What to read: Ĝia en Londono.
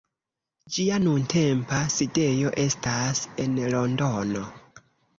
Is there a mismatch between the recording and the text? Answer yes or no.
yes